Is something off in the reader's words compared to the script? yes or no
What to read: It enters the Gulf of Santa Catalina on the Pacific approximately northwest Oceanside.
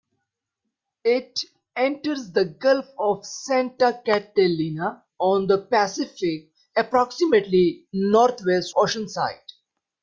no